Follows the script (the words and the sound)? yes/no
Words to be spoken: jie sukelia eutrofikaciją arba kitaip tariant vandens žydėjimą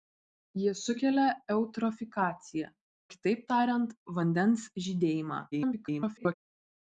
no